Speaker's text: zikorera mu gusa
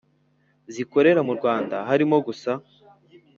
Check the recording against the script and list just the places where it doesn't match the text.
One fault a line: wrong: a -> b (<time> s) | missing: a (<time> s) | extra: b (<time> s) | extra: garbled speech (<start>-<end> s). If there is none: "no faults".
extra: rwanda harimo (1.4 s)